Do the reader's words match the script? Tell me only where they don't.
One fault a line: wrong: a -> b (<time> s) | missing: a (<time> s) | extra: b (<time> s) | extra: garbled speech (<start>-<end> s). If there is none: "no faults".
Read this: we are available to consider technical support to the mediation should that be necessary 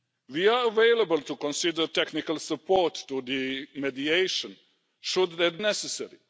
missing: be (5.6 s)